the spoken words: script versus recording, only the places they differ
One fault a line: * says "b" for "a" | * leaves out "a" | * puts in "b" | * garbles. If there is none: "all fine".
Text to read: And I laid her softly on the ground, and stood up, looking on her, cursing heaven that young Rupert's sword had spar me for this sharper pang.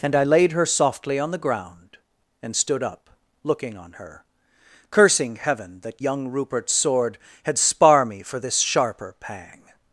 all fine